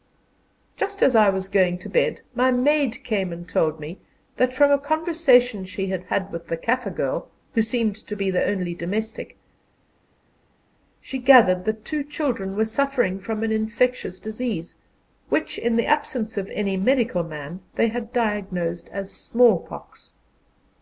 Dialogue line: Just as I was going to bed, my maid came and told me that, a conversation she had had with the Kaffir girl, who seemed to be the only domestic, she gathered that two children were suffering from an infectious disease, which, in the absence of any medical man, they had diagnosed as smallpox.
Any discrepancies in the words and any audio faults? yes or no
yes